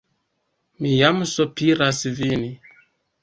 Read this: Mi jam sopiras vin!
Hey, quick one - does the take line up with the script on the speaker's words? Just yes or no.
yes